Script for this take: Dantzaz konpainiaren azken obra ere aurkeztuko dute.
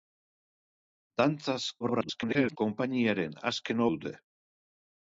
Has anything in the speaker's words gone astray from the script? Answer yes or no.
yes